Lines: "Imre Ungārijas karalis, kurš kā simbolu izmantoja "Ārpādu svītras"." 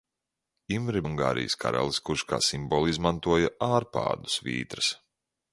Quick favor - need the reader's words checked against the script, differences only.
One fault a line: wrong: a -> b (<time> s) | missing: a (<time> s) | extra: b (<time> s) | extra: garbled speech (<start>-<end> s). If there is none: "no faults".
no faults